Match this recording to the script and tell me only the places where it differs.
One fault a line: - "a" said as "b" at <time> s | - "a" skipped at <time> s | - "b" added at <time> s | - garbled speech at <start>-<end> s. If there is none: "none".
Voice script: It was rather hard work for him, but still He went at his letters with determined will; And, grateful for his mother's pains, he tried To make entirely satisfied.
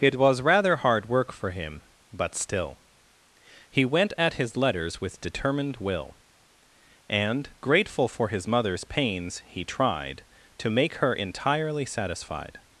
- "her" added at 10.9 s